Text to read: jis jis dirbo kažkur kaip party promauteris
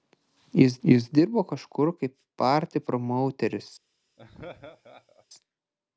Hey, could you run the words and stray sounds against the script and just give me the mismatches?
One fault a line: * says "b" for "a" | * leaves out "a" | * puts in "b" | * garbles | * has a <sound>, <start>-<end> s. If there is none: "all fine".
* has a laugh, 4.2-5.3 s